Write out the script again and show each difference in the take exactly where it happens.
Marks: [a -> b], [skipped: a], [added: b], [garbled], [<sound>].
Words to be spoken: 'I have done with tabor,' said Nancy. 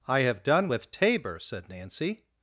'I have done with tabor,' said Nancy.